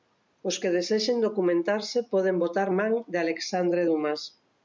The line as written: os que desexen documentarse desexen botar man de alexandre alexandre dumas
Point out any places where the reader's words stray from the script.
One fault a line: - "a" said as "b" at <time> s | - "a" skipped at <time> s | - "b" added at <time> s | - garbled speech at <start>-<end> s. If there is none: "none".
- "desexen" said as "poden" at 2.1 s
- "alexandre" skipped at 3.8 s